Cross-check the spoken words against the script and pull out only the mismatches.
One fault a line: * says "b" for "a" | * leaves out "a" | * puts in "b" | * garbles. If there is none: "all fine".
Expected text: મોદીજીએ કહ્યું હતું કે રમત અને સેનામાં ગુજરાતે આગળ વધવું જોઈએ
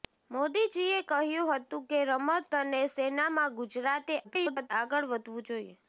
* garbles